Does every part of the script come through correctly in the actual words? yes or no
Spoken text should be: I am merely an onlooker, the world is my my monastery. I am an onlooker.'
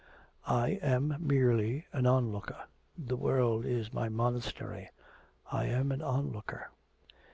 no